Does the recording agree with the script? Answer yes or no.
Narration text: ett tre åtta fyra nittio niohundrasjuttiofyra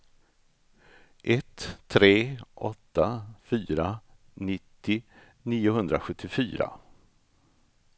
yes